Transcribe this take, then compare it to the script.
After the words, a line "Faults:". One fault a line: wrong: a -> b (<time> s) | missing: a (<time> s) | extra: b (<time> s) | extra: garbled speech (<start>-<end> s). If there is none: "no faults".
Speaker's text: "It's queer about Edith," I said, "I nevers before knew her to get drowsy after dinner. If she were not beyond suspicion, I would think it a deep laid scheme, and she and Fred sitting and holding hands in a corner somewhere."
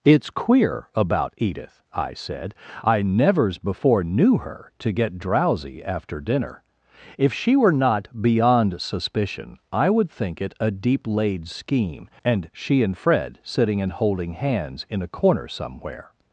"It's queer about Edith," I said, "I nevers before knew her to get drowsy after dinner. If she were not beyond suspicion, I would think it a deep laid scheme, and she and Fred sitting and holding hands in a corner somewhere."
Faults:
no faults